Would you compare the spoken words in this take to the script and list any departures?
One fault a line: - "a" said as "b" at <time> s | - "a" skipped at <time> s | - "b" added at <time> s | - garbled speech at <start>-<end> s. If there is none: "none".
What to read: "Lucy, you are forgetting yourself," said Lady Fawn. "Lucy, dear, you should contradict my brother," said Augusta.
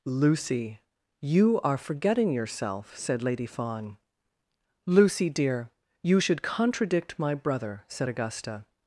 none